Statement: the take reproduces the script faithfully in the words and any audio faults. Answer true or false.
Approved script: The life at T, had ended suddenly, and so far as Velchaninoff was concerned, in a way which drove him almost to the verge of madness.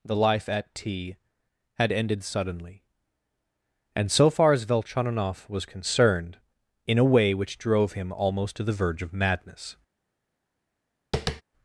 false